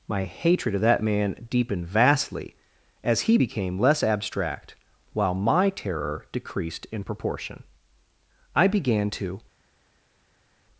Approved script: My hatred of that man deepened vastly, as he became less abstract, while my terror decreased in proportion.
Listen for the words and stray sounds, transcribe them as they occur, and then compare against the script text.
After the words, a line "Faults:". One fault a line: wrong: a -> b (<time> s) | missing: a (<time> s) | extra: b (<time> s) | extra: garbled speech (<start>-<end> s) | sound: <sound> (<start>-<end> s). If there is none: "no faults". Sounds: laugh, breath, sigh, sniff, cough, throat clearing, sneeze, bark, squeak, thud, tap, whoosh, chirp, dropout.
My hatred of that man deepened vastly, as he became less abstract, while my terror decreased in proportion. I began to
Faults:
extra: I began to (8.5 s)